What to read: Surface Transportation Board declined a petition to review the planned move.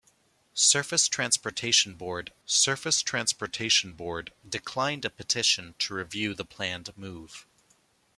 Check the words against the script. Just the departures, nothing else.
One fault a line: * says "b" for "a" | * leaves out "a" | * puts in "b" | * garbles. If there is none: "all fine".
* puts in "surface Transportation Board"